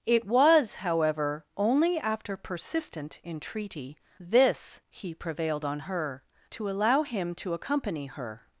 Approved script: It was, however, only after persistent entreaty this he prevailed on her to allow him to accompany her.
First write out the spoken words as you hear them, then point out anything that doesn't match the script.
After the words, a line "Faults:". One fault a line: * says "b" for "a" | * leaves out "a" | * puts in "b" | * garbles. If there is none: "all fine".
It was, however, only after persistent entreaty this he prevailed on her to allow him to accompany her.
Faults:
all fine